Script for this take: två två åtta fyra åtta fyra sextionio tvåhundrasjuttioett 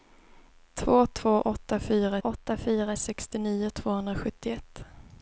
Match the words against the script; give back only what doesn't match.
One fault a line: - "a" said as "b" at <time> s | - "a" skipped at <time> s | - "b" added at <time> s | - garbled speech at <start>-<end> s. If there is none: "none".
none